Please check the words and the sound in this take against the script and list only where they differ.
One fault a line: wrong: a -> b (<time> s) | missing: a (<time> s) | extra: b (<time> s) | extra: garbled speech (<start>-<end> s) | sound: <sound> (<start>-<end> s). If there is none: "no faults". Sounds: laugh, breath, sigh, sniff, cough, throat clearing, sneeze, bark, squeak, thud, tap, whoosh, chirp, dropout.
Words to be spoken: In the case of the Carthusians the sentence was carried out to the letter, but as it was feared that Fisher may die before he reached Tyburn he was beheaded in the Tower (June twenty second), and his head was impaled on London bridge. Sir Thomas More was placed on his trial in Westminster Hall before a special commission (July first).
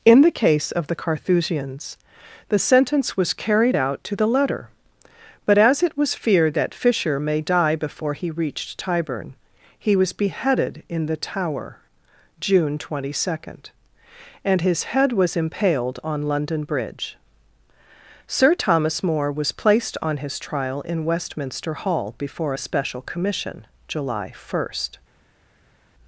no faults